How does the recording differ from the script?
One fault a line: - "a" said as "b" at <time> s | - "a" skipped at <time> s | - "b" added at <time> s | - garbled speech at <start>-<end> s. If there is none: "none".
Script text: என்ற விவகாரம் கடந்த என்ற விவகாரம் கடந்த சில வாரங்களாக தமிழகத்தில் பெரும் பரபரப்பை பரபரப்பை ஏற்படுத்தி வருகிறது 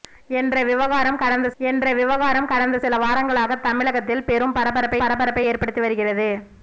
none